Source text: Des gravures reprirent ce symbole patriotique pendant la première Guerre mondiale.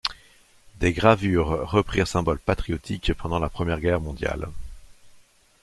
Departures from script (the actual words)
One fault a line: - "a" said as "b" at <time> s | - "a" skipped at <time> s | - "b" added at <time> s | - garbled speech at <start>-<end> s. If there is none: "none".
- "ce" skipped at 2.1 s